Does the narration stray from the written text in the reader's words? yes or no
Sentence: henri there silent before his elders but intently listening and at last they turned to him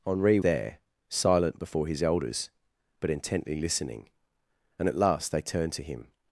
no